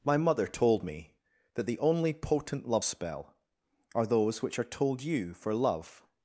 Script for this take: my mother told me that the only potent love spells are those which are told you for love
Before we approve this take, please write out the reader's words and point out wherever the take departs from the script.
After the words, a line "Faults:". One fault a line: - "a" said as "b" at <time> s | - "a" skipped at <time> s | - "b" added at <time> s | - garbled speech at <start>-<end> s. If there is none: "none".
my mother told me that the only potent love spell are those which are told you for love
Faults:
- "spells" said as "spell" at 2.8 s